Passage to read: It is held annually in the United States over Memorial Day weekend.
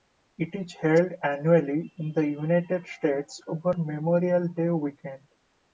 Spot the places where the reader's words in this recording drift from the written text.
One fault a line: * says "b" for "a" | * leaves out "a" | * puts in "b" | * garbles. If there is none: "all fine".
all fine